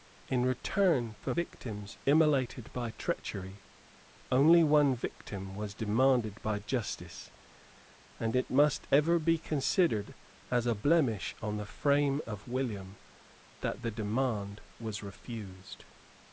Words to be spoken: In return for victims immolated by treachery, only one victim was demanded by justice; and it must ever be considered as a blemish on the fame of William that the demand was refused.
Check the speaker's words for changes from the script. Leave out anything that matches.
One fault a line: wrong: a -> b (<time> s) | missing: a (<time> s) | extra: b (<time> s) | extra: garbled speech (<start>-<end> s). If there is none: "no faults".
no faults